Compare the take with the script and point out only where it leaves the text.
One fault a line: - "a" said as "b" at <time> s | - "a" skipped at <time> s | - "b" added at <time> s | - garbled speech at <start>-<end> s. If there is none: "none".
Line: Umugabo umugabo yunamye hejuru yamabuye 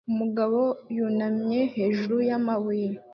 - "umugabo" skipped at 0.6 s